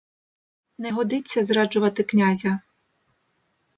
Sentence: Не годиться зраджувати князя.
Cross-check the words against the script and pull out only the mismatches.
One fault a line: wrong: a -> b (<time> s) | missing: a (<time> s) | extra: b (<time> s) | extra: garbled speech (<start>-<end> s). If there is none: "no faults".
no faults